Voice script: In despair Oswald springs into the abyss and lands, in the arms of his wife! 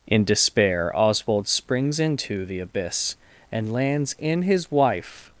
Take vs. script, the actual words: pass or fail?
fail